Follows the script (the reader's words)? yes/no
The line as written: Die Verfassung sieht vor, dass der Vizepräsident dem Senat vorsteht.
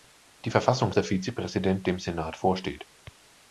no